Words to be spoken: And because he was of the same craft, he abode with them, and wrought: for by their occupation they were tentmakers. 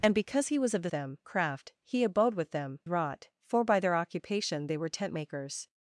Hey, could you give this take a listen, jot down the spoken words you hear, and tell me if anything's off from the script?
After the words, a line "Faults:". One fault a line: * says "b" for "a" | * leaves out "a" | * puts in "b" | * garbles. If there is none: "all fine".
And because he was of the them craft, he abode with them, wrought: for by their occupation they were tentmakers.
Faults:
* says "them" for "same"
* leaves out "and"